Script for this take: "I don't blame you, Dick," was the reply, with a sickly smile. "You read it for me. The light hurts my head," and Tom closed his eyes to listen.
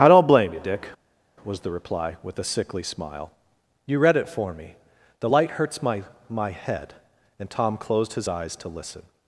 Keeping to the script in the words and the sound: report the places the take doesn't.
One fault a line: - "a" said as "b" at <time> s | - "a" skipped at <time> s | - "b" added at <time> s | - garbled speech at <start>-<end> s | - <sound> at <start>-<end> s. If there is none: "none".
- "my" added at 6.3 s